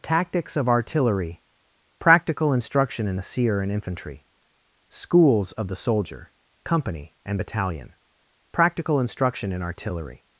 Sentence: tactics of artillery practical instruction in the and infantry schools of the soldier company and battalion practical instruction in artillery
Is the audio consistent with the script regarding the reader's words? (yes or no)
no